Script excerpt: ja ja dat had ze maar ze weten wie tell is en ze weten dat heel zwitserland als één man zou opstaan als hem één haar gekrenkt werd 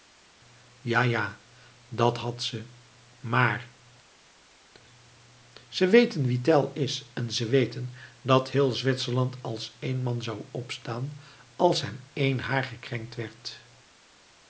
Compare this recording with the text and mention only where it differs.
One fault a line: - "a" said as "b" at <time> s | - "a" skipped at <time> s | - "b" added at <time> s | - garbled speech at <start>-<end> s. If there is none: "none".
none